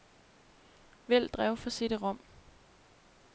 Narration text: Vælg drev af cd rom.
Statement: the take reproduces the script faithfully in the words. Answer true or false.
false